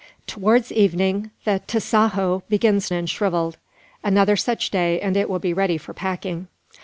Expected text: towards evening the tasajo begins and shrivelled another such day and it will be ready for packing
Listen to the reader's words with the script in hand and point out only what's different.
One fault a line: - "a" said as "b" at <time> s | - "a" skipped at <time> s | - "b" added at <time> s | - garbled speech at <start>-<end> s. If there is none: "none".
none